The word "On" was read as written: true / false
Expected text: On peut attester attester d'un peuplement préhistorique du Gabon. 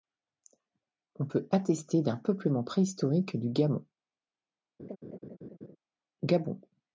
true